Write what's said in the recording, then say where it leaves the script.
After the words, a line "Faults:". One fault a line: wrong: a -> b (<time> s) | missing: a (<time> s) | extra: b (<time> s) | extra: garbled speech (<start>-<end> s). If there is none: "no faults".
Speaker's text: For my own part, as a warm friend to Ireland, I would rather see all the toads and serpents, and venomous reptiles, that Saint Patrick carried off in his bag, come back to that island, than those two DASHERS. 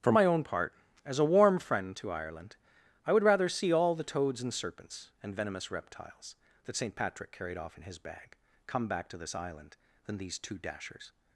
For my own part, as a warm friend to Ireland, I would rather see all the toads and serpents, and venomous reptiles, that Saint Patrick carried off in his bag, come back to this island, than these two DASHERS.
Faults:
wrong: that -> this (9.2 s)
wrong: those -> these (10.2 s)